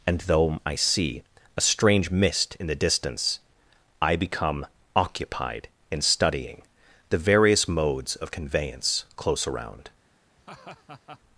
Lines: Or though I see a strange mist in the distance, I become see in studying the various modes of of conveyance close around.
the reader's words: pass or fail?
fail